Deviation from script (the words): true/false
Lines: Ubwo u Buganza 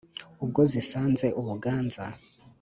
true